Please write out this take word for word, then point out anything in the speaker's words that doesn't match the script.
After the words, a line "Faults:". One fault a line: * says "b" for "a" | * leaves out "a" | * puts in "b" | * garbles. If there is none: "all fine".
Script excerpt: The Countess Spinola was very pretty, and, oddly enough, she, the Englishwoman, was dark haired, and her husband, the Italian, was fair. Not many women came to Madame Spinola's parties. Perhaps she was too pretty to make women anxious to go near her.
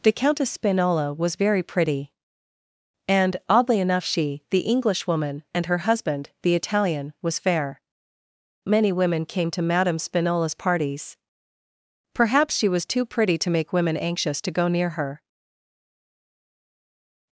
The Countess Spinola was very pretty, and, oddly enough, she, the Englishwoman, and her husband, the Italian, was fair. Many women came to Madame Spinola's parties. Perhaps she was too pretty to make women anxious to go near her.
Faults:
* leaves out "was dark haired"
* leaves out "Not"